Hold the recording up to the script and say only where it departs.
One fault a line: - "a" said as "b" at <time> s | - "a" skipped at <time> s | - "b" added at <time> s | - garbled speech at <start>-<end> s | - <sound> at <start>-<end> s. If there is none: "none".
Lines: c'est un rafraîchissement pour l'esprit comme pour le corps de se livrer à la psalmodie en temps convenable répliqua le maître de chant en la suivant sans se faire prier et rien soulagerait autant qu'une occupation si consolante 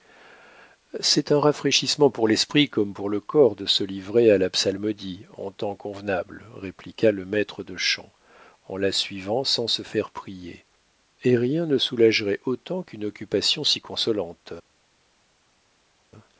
- "ne" added at 11.7 s